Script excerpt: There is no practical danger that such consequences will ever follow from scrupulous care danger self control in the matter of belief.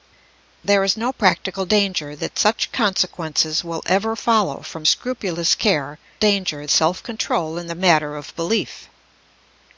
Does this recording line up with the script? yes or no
yes